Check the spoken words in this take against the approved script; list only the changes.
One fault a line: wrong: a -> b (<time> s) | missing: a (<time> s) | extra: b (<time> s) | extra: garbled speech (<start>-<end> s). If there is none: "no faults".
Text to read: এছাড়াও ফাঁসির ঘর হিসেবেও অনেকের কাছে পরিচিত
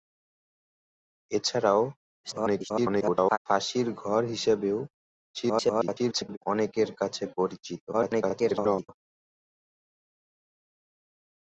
extra: garbled speech (2.2-3.4 s)
extra: garbled speech (5.3-6.4 s)
extra: garbled speech (7.9-8.9 s)